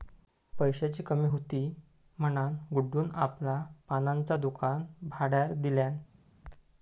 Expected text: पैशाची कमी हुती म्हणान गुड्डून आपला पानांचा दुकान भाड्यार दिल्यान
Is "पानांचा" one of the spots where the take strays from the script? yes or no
no